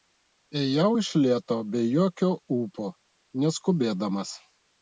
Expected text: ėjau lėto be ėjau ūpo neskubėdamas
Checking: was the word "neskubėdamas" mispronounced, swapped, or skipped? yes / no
no